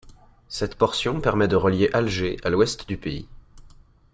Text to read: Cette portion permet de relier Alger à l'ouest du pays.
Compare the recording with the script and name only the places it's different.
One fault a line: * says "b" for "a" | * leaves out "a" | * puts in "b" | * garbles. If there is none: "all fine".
all fine